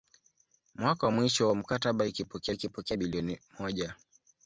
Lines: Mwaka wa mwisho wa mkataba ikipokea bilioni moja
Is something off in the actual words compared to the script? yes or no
yes